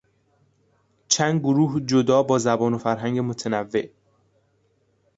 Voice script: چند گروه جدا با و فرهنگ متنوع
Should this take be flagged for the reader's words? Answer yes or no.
yes